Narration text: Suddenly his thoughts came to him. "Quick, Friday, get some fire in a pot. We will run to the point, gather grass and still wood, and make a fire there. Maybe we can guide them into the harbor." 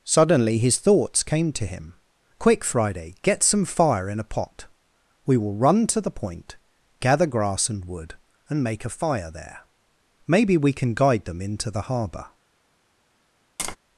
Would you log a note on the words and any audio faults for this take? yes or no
yes